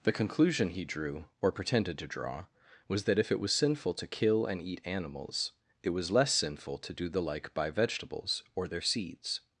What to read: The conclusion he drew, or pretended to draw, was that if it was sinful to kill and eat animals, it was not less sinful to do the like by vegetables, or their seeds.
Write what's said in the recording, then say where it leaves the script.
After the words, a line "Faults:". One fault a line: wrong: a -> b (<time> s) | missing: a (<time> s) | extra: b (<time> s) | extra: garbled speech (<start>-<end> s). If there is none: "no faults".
The conclusion he drew, or pretended to draw, was that if it was sinful to kill and eat animals, it was less sinful to do the like by vegetables, or their seeds.
Faults:
missing: not (6.1 s)